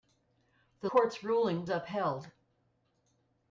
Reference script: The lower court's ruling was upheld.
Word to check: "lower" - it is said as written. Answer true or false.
false